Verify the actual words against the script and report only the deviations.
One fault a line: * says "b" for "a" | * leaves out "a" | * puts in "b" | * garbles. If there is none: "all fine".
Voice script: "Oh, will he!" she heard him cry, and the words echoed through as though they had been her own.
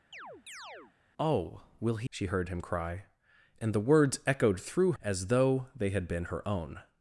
all fine